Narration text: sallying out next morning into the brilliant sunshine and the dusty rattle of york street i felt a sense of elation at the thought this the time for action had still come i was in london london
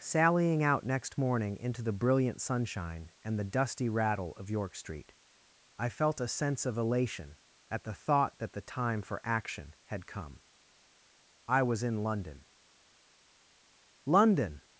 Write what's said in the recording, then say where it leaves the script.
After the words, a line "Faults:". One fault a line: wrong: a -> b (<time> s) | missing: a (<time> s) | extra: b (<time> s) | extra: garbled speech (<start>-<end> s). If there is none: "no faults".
sallying out next morning into the brilliant sunshine and the dusty rattle of york street i felt a sense of elation at the thought that the time for action had come i was in london london
Faults:
wrong: this -> that (8.4 s)
missing: still (10.1 s)